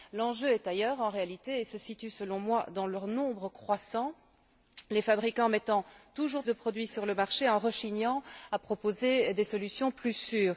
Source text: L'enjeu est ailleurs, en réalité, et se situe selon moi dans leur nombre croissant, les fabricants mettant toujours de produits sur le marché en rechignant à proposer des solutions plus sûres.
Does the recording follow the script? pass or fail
pass